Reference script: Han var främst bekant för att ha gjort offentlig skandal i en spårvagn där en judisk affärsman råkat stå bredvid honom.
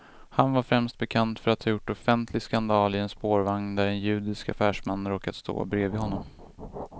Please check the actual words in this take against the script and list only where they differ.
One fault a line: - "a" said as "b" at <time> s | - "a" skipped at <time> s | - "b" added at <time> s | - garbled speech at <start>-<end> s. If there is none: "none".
none